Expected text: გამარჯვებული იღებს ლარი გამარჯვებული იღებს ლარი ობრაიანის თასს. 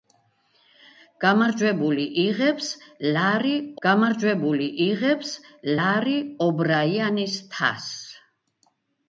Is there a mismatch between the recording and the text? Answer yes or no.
no